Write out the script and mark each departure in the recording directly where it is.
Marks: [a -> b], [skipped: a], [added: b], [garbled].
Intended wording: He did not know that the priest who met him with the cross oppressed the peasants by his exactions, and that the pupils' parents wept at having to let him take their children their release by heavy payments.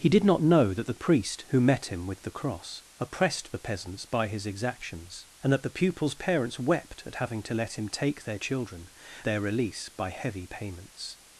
He did not know that the priest who met him with the cross oppressed the peasants by his exactions, and that the pupils' parents wept at having to let him take their children their release by heavy payments.